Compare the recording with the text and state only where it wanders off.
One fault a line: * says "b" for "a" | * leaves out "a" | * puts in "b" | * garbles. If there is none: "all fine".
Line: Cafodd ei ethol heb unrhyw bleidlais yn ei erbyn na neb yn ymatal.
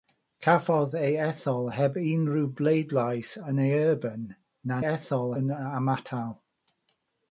* says "ethol" for "neb"